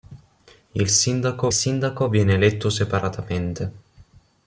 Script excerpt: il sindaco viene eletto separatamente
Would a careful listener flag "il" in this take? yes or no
no